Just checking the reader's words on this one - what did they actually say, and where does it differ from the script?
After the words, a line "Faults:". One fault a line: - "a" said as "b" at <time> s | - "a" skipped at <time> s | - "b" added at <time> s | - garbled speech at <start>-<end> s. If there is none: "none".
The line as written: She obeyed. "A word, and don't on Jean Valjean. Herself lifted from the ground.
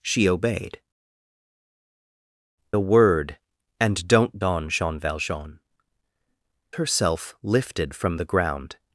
She obeyed. "A word, and don't on Jean Valjean. Herself lifted from the ground.
Faults:
none